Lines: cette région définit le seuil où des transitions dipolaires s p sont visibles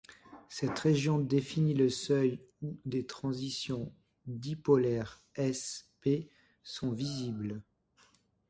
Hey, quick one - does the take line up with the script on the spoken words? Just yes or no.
yes